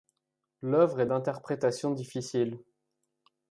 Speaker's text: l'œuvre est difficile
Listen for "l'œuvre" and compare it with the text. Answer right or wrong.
right